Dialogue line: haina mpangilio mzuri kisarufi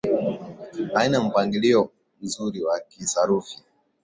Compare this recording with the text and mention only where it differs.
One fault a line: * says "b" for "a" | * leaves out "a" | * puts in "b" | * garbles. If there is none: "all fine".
* puts in "wa"